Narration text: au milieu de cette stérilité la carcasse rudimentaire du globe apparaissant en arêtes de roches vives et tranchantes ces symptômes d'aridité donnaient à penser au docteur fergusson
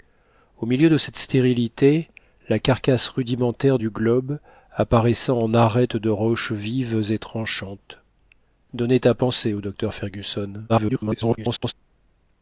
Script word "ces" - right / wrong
wrong